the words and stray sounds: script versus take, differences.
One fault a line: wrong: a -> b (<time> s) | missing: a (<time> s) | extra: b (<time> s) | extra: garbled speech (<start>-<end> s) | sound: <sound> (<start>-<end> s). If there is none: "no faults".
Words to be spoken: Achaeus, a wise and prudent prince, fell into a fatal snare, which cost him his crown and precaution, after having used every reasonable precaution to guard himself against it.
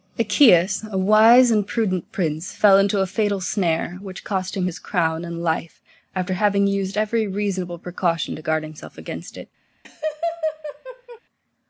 wrong: precaution -> life (5.4 s)
sound: laugh (9.8-11.2 s)